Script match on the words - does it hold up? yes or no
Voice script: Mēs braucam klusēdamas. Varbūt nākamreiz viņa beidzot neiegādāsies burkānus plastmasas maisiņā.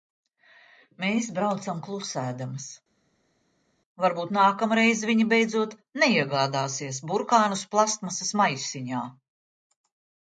yes